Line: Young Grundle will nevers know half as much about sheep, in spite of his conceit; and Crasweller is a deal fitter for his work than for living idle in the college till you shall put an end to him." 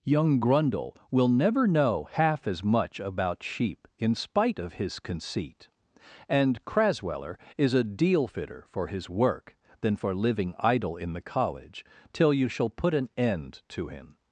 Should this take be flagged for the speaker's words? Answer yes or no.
yes